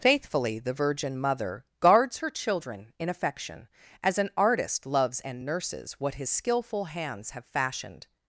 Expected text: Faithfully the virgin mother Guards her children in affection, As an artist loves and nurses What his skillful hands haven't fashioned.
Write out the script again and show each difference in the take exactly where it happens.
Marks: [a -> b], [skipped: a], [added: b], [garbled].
Faithfully the virgin mother Guards her children in affection, As an artist loves and nurses What his skillful hands [haven't -> have] fashioned.